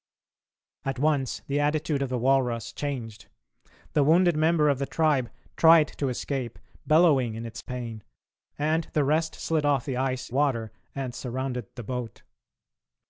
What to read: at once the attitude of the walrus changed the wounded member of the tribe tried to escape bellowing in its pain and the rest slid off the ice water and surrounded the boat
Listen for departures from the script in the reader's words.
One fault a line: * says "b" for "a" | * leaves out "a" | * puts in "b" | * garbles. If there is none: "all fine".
all fine